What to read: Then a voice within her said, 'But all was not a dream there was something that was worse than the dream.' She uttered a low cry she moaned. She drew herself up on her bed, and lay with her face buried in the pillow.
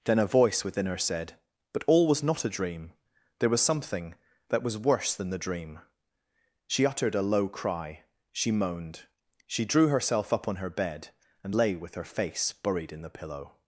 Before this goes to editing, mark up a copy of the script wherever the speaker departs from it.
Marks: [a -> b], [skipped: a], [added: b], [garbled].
Then a voice within her said, 'But all was not a dream there was something that was worse than the dream.' She uttered a low cry she moaned. She drew herself up on her bed, and lay with her face buried in the pillow.